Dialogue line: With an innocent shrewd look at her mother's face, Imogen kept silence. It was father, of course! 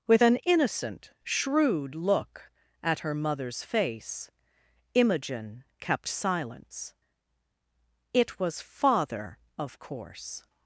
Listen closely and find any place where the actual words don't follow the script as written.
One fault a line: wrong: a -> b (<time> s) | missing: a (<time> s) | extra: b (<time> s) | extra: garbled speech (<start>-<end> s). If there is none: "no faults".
no faults